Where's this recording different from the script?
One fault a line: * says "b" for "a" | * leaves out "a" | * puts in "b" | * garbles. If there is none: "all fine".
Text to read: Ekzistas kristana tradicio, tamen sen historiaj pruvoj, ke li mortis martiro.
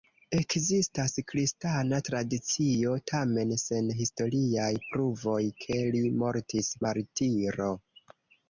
all fine